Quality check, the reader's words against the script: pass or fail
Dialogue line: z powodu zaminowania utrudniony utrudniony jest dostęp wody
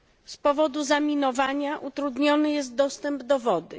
fail